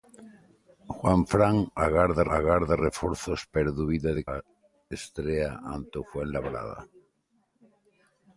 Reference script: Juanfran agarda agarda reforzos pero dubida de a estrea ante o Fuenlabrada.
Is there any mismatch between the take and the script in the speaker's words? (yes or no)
no